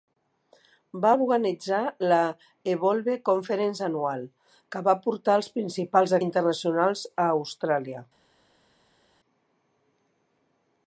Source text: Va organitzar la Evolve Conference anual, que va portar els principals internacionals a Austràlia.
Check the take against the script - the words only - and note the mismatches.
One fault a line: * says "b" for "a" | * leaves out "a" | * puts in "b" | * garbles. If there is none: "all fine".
all fine